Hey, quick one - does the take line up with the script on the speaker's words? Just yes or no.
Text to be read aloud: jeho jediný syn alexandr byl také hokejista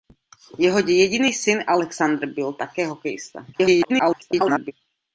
no